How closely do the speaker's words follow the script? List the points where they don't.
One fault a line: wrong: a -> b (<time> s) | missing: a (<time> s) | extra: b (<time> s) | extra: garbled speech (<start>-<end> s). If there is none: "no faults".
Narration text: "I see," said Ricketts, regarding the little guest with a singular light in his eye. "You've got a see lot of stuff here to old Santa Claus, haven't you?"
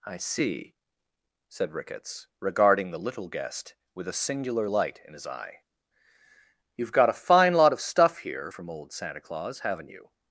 wrong: see -> fine (7.1 s)
wrong: to -> from (8.5 s)